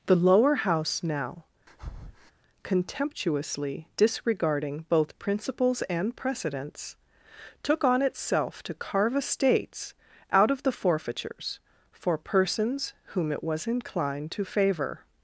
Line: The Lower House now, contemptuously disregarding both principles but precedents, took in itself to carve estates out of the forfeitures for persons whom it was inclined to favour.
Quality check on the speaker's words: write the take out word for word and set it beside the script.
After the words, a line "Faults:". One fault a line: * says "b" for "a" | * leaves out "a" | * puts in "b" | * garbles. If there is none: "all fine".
The Lower House now, contemptuously disregarding both principles and precedents, took on itself to carve estates out of the forfeitures for persons whom it was inclined to favour.
Faults:
* says "and" for "but"
* says "on" for "in"